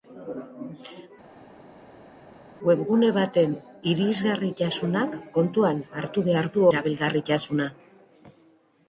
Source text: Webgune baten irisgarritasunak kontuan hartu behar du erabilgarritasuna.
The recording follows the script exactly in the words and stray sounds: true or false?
true